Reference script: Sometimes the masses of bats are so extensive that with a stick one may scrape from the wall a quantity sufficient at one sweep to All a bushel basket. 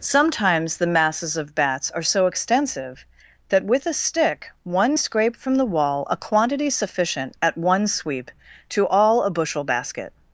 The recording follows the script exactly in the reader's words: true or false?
false